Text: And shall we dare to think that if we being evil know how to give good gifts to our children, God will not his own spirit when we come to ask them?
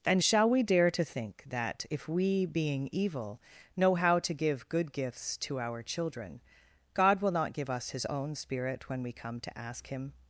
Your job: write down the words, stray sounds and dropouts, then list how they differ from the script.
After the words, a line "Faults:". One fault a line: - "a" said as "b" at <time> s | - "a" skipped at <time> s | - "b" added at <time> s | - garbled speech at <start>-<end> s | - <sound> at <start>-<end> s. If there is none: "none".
And shall we dare to think that if we being evil know how to give good gifts to our children, God will not give us his own spirit when we come to ask him?
Faults:
- "give us" added at 7.5 s
- "them" said as "him" at 9.9 s